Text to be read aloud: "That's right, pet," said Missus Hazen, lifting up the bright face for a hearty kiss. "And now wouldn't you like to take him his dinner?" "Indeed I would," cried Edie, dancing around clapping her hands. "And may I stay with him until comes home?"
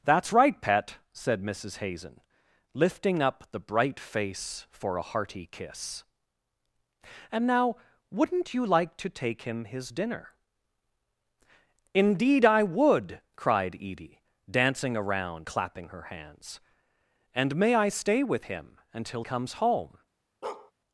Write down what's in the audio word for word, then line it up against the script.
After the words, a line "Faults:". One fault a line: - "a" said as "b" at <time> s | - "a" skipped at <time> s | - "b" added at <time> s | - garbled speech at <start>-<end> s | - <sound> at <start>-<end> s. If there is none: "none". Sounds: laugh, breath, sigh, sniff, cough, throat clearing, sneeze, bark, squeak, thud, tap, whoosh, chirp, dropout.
"That's right, pet," said Missus Hazen, lifting up the bright face for a hearty kiss. "And now wouldn't you like to take him his dinner?" "Indeed I would," cried Edie, dancing around clapping her hands. "And may I stay with him until comes home?"
Faults:
- bark at 20.4-20.7 s